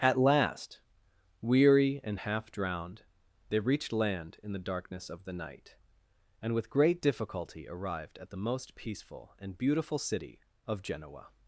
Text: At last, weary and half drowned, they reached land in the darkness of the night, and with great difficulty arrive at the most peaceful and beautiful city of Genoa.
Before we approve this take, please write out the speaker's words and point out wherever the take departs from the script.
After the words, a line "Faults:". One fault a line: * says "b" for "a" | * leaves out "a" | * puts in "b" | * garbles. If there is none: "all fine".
At last, weary and half drowned, they reached land in the darkness of the night, and with great difficulty arrived at the most peaceful and beautiful city of Genoa.
Faults:
* says "arrived" for "arrive"